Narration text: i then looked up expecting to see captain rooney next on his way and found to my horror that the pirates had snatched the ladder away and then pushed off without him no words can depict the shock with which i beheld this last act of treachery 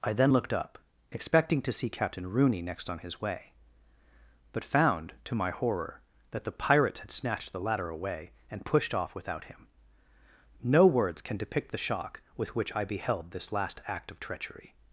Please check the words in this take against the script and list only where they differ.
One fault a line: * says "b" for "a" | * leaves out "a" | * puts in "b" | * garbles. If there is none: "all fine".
* says "but" for "and"
* leaves out "then"